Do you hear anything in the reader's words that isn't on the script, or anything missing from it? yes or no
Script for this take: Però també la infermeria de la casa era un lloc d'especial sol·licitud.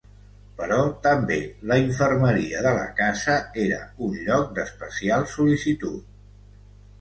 no